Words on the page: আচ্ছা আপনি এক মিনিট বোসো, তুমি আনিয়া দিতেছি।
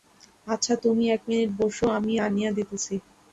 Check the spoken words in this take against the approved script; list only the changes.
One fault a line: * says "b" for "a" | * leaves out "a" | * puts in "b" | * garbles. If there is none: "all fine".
* says "তুমি" for "আপনি"
* says "আমি" for "তুমি"